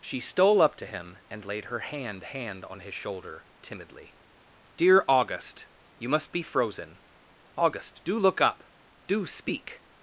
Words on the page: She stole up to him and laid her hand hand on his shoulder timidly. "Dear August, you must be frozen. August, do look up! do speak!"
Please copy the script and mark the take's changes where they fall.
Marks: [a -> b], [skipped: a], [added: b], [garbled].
She stole up to him and laid her hand hand on his shoulder timidly. "Dear August, you must be frozen. August, do look up! do speak!"